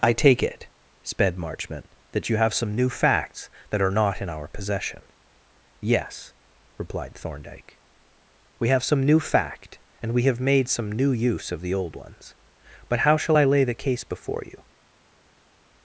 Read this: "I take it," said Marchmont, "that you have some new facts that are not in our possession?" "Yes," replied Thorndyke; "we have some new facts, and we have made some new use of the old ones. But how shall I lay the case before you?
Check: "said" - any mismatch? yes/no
yes